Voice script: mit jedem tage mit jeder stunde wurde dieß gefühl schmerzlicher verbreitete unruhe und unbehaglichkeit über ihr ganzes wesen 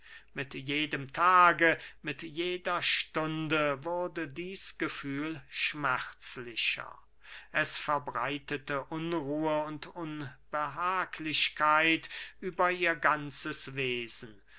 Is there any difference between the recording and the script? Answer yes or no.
yes